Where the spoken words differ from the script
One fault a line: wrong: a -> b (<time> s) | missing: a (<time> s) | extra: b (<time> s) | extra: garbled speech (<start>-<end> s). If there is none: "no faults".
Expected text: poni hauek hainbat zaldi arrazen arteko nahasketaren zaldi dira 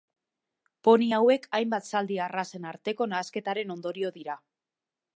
wrong: zaldi -> ondorio (3.8 s)